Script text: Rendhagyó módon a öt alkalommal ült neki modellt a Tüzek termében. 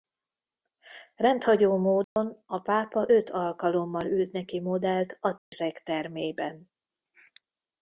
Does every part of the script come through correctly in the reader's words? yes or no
no